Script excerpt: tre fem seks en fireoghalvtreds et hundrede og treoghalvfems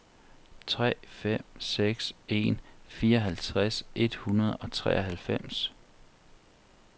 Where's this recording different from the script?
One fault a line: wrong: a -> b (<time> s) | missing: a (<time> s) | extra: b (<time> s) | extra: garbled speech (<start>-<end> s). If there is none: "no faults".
no faults